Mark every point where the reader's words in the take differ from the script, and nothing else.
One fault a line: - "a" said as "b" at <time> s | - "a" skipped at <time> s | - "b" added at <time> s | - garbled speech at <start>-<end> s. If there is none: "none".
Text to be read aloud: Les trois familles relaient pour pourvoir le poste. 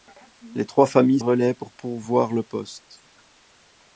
none